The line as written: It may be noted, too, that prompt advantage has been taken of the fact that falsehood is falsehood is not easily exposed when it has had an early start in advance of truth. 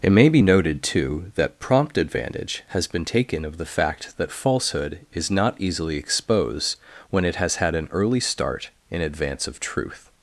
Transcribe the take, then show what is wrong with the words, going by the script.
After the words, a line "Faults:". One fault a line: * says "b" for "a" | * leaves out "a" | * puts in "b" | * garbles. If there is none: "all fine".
It may be noted, too, that prompt advantage has been taken of the fact that falsehood is not easily exposed when it has had an early start in advance of truth.
Faults:
* leaves out "falsehood is"